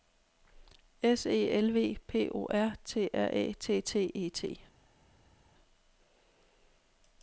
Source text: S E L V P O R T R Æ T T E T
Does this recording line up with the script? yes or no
yes